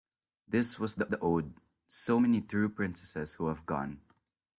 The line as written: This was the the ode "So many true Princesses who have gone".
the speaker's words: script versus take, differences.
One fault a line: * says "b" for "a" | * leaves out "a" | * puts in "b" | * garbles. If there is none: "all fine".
all fine